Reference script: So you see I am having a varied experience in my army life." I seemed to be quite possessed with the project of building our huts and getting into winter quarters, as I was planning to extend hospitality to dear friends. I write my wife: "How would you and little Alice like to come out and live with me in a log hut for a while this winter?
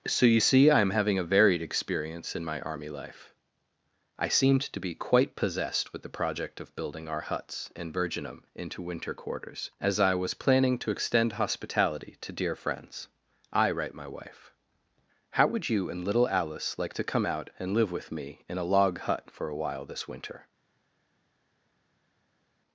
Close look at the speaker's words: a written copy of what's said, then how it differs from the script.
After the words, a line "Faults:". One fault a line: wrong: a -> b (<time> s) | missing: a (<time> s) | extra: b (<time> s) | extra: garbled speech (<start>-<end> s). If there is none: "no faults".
So you see I am having a varied experience in my army life." I seemed to be quite possessed with the project of building our huts and virginum into winter quarters, as I was planning to extend hospitality to dear friends. I write my wife: "How would you and little Alice like to come out and live with me in a log hut for a while this winter?
Faults:
wrong: getting -> virginum (7.9 s)